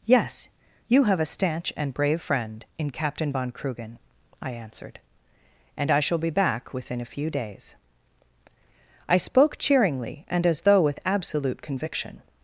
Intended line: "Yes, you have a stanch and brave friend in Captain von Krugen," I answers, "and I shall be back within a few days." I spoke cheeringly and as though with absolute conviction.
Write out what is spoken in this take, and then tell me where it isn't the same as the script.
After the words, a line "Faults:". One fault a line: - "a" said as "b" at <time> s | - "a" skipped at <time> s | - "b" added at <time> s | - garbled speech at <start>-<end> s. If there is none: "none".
"Yes, you have a stanch and brave friend in Captain von Krugen," I answered, "and I shall be back within a few days." I spoke cheeringly and as though with absolute conviction.
Faults:
- "answers" said as "answered" at 4.5 s